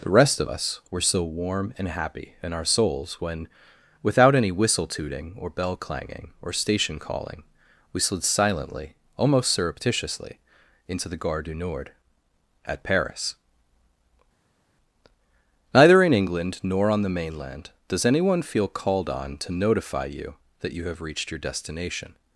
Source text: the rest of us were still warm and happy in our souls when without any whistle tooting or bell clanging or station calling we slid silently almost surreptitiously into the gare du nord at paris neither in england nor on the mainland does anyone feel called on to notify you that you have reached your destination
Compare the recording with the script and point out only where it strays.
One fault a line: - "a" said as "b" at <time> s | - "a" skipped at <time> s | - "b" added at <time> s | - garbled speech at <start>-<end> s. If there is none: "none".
- "still" said as "so" at 1.0 s